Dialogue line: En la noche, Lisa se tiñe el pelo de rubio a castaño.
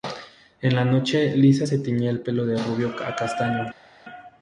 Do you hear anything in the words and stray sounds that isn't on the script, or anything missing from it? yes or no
no